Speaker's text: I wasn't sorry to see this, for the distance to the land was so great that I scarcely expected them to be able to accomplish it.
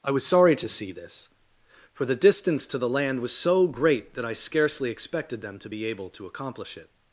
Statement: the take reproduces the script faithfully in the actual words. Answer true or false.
false